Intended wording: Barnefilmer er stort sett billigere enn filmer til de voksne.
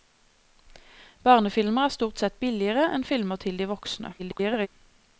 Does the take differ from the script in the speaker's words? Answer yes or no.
yes